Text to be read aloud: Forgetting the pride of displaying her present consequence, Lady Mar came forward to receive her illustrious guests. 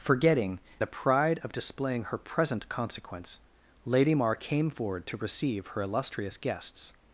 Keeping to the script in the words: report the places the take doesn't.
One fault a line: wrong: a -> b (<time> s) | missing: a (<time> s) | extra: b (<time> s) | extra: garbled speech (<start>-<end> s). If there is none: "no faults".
no faults